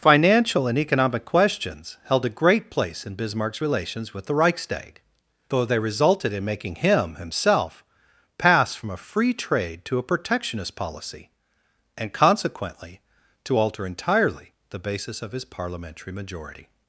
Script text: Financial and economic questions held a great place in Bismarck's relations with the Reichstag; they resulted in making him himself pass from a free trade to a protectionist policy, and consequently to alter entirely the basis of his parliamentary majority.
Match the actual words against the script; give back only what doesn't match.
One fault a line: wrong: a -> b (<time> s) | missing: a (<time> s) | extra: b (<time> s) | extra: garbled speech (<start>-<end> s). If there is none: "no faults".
extra: though (5.5 s)